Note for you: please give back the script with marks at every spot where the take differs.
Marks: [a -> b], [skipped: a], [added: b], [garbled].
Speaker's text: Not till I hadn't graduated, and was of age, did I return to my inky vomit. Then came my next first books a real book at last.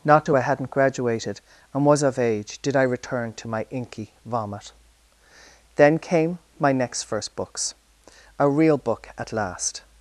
Not till I hadn't graduated, and was of age, did I return to my inky vomit. Then came my next first books a real book at last.